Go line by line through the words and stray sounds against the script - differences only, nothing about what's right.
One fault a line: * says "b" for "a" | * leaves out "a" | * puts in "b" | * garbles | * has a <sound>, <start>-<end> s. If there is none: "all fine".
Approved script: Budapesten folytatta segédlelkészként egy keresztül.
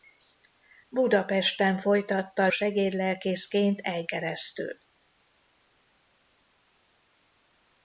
all fine